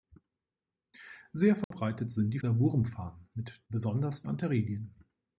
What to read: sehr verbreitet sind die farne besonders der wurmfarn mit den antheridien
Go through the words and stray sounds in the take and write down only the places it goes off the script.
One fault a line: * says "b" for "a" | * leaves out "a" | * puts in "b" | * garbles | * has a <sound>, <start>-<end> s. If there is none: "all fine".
* has a dropout, 1.6-1.7 s
* leaves out "farne besonders"
* says "besonders" for "den"